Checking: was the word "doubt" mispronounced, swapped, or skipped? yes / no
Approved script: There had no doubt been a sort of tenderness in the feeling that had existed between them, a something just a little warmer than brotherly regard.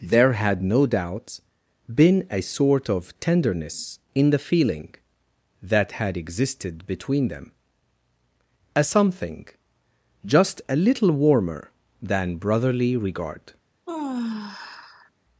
no